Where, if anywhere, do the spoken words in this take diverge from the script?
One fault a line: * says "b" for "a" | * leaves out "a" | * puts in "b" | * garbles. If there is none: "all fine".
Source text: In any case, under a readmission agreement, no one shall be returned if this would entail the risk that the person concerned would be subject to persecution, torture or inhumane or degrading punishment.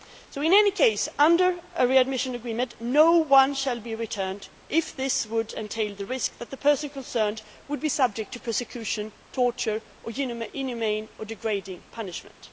all fine